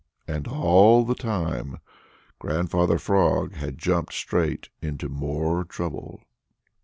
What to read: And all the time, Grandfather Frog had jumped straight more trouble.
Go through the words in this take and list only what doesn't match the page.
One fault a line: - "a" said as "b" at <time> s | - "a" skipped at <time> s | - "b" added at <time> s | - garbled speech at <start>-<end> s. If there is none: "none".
- "into" added at 4.8 s